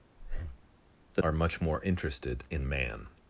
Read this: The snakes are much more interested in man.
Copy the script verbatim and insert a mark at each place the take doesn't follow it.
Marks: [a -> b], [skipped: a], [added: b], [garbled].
The [skipped: snakes] are much more interested in man.